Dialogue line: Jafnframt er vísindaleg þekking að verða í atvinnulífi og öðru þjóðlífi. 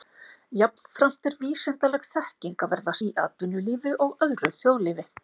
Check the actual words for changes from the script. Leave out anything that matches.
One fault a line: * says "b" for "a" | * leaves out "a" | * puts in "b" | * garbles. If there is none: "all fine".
all fine